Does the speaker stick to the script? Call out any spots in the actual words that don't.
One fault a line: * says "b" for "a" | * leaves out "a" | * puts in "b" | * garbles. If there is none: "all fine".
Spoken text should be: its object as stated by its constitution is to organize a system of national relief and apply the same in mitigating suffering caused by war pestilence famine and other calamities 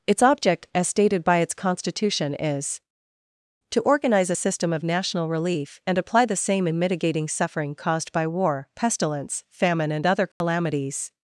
all fine